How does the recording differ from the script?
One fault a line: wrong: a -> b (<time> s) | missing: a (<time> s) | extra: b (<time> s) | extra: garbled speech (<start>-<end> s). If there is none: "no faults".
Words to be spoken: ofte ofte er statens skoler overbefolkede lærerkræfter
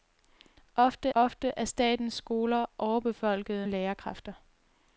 no faults